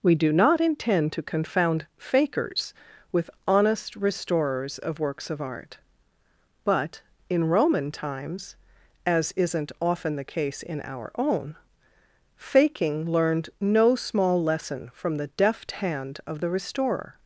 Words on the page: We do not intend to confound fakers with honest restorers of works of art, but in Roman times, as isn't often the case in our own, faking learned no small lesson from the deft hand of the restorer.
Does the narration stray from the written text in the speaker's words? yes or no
no